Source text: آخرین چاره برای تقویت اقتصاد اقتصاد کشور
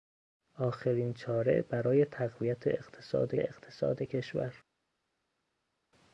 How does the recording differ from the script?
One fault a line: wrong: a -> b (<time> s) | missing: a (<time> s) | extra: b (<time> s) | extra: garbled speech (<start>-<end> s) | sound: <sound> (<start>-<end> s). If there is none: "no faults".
no faults